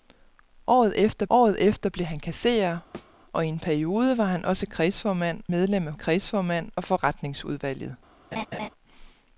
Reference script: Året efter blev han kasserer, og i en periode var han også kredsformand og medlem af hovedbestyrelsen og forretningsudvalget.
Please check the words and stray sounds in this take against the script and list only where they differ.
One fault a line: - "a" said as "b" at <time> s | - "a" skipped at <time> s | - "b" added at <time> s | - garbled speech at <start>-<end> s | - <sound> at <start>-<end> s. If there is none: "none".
- "året efter" added at 1.3 s
- thud at 2.9-3.1 s
- "og" skipped at 5.4 s
- "hovedbestyrelsen" said as "kredsformand" at 5.9 s
- laugh at 8.3-8.7 s